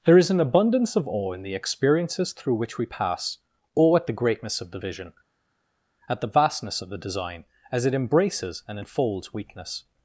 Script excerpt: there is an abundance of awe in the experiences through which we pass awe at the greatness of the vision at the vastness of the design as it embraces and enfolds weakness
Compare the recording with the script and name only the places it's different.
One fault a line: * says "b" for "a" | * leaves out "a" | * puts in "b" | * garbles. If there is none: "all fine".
all fine